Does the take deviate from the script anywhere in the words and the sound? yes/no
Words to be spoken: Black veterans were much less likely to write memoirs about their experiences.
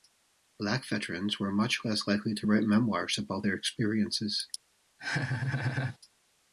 yes